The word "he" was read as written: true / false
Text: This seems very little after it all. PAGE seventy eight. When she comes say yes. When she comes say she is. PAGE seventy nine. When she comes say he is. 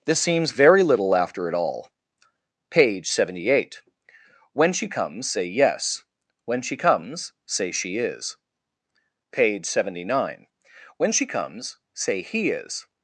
true